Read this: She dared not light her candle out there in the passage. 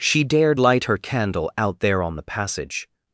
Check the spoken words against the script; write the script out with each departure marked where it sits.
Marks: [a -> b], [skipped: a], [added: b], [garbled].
She dared [skipped: not] light her candle out there [in -> on] the passage.